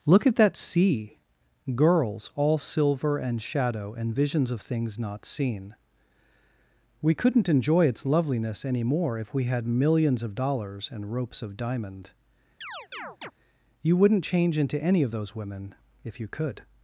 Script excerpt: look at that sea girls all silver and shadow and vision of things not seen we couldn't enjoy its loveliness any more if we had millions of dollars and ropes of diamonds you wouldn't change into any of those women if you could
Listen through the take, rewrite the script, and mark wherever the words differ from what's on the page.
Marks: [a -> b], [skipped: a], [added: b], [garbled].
look at that sea girls all silver and shadow and [vision -> visions] of things not seen we couldn't enjoy its loveliness any more if we had millions of dollars and ropes of [diamonds -> diamond] you wouldn't change into any of those women if you could